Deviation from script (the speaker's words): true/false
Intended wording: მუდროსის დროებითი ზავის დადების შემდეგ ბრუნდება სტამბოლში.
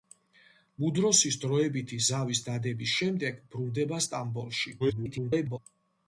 true